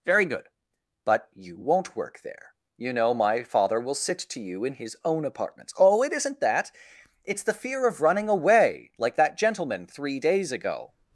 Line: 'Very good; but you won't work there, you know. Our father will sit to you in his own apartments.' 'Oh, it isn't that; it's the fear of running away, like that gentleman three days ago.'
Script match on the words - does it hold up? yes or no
no